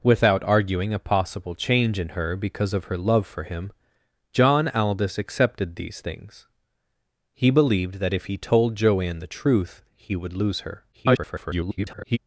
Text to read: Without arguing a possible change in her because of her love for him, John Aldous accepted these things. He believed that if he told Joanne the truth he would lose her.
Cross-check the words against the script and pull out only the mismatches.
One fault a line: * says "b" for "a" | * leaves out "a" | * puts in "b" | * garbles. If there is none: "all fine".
* garbles